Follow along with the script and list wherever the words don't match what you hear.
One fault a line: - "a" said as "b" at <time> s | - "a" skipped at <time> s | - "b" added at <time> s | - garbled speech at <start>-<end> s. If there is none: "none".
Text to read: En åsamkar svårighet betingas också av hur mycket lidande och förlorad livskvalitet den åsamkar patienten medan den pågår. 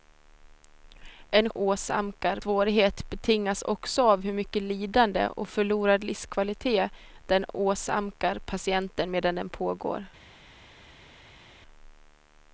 none